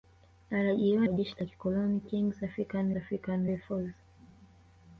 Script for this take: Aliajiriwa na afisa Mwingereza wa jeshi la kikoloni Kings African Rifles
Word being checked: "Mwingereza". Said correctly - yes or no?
no